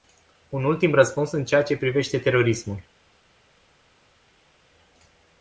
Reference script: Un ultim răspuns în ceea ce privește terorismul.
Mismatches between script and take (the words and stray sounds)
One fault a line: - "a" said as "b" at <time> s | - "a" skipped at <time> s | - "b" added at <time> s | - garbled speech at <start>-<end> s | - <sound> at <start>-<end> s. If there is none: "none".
none